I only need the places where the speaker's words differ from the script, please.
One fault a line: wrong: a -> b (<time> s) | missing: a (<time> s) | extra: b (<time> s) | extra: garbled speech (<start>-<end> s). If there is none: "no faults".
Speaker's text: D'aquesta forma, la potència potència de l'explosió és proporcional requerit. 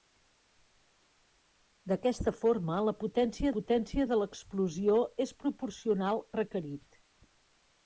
no faults